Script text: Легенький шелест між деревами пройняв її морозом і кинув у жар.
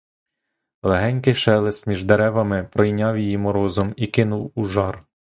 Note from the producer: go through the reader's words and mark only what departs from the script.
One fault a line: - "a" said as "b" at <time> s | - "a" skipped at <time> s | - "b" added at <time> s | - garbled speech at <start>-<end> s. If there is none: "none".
none